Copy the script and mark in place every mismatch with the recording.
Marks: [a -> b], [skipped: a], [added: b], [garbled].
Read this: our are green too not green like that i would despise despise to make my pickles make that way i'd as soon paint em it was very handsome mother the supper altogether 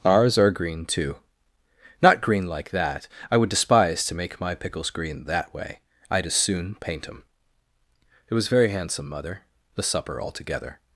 [our -> ours] are green too not green like that i would despise [skipped: despise] to make my pickles [make -> green] that way i'd as soon paint em it was very handsome mother the supper altogether